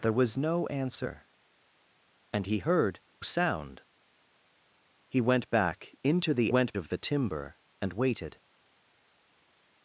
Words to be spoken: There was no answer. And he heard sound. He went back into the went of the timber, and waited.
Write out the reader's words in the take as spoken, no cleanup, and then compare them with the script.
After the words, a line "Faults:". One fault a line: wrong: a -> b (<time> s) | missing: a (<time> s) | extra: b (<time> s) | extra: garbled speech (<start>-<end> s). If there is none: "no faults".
There was no answer. And he heard sound. He went back into the went of the timber, and waited.
Faults:
no faults